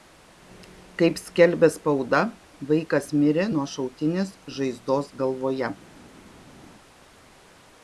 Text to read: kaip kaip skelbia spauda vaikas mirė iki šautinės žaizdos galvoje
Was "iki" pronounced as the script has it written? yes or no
no